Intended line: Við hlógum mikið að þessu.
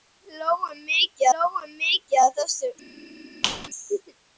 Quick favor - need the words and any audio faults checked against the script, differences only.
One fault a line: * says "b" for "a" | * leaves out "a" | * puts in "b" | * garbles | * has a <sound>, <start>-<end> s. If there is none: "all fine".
* puts in "hlógum mikið"
* has a squeak, 3.4-3.7 s